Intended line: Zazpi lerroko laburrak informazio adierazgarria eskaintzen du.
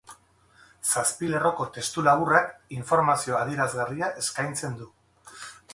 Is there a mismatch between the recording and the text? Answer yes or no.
yes